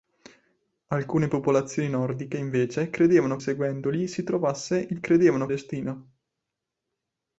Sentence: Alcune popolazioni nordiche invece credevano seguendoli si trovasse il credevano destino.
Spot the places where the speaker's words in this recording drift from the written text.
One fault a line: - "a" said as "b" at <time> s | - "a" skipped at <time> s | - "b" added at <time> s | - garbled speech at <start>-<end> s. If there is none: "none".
none